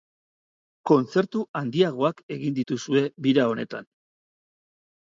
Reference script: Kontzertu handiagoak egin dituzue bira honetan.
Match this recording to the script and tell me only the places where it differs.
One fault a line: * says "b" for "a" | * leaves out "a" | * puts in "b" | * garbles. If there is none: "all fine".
all fine